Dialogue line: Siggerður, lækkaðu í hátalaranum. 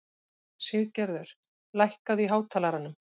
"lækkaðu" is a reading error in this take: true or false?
false